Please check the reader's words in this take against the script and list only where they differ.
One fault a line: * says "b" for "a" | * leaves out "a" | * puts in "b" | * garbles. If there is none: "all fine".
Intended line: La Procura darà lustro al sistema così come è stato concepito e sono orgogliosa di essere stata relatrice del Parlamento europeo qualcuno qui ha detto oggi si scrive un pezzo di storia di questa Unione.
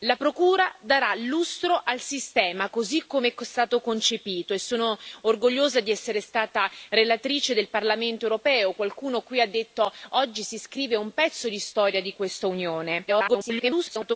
* garbles